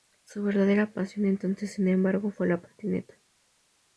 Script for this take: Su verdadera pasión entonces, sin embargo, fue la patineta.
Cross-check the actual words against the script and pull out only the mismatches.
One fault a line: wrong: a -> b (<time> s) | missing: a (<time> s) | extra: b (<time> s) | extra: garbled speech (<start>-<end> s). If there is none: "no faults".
no faults